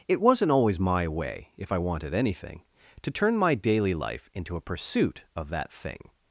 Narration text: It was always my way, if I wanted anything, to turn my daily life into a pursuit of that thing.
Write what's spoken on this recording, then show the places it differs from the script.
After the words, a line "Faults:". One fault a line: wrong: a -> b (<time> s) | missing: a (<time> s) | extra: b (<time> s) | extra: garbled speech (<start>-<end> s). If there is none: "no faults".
It wasn't always my way, if I wanted anything, to turn my daily life into a pursuit of that thing.
Faults:
wrong: was -> wasn't (0.2 s)